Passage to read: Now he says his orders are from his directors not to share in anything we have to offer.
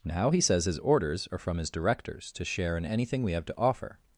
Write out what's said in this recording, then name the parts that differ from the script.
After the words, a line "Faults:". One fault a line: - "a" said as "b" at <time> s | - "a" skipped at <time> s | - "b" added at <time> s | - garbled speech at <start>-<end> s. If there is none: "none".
Now he says his orders are from his directors to share in anything we have to offer.
Faults:
- "not" skipped at 2.3 s